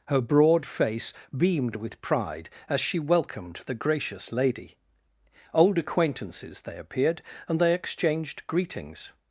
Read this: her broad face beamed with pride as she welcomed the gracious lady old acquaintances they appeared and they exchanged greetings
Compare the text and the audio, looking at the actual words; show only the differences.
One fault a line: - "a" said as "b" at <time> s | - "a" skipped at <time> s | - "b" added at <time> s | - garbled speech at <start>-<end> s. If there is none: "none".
none